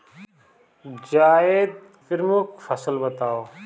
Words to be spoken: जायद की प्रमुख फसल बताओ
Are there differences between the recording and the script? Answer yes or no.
yes